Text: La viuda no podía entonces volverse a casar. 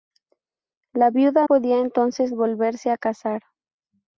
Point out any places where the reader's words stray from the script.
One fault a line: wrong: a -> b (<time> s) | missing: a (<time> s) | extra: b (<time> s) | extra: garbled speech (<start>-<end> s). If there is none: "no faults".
missing: no (1.5 s)